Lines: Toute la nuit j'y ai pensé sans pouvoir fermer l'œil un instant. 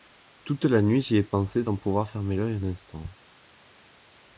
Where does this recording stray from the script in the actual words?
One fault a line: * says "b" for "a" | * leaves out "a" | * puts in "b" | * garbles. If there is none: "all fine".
all fine